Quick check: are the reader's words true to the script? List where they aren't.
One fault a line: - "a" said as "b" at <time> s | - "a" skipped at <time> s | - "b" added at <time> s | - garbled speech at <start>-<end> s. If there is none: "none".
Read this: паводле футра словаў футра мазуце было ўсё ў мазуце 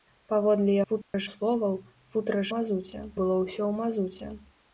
none